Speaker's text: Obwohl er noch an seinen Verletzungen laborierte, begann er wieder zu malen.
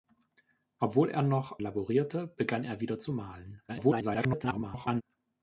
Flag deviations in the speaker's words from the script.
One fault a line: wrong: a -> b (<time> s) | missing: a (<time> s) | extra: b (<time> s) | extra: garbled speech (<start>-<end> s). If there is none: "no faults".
missing: an seinen Verletzungen (1.6 s)
extra: garbled speech (3.7-5.0 s)